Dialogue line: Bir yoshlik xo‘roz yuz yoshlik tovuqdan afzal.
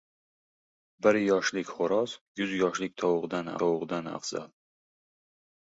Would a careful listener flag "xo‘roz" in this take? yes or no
no